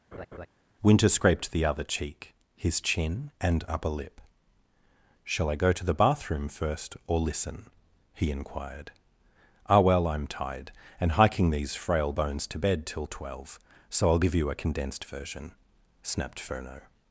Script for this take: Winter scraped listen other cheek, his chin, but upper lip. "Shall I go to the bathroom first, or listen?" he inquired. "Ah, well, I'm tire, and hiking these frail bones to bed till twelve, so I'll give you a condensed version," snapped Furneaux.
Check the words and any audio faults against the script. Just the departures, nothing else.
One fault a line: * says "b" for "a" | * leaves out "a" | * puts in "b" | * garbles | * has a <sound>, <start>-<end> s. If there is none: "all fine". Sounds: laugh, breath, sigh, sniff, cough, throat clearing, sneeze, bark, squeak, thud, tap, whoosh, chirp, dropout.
* has a laugh, 0.1-0.5 s
* says "the" for "listen"
* says "and" for "but"
* says "tired" for "tire"